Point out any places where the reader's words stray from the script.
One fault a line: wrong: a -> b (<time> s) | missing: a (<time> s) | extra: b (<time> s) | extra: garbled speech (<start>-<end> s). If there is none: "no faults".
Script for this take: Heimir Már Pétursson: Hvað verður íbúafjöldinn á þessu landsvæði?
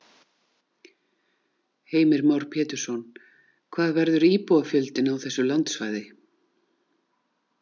no faults